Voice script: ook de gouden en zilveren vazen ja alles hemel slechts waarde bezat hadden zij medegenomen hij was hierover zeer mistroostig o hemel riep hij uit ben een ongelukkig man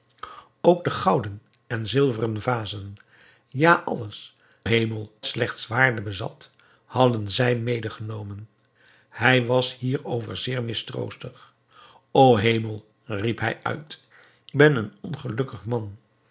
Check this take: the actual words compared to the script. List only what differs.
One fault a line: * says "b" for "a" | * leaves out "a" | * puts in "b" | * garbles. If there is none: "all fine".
all fine